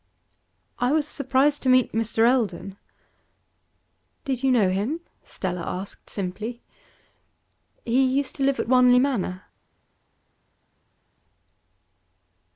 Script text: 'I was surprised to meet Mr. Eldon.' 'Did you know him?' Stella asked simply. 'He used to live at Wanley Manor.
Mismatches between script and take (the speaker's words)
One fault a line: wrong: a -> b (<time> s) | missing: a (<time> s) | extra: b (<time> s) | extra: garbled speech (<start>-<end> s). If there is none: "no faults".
no faults